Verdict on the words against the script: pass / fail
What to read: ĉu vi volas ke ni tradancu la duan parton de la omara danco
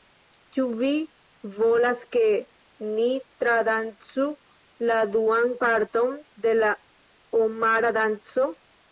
pass